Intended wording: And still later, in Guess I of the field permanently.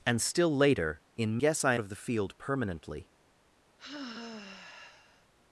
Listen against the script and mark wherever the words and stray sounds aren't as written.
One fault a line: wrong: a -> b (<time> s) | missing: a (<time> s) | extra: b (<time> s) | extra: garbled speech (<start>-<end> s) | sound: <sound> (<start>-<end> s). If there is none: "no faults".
sound: sigh (3.8-5.3 s)